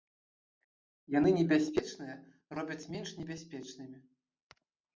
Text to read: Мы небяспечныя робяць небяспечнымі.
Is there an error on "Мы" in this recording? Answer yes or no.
yes